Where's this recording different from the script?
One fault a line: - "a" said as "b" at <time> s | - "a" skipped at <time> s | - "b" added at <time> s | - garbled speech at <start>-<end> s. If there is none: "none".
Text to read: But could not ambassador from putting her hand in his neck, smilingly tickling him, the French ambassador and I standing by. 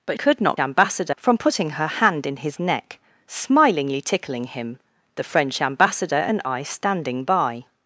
none